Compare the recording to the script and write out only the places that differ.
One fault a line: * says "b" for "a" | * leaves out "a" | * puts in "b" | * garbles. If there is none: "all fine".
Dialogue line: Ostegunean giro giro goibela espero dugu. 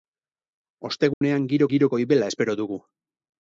all fine